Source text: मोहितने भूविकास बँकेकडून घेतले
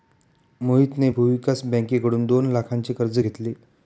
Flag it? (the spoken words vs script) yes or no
yes